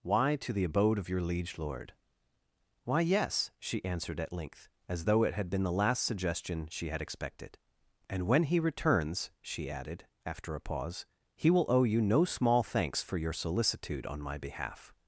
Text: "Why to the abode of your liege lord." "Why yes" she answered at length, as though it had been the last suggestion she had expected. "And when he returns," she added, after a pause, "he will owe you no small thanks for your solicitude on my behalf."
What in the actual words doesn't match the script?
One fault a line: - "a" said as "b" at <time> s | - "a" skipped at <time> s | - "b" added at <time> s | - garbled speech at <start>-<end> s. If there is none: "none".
none